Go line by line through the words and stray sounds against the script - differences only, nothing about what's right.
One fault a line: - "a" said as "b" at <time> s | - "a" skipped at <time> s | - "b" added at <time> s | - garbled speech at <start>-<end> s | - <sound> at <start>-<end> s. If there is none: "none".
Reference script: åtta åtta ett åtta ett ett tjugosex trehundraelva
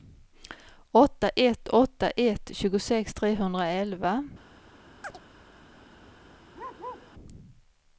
- "åtta" skipped at 1.3 s
- "ett" skipped at 2.5 s
- chirp at 5.0-5.2 s
- bark at 6.5-7.1 s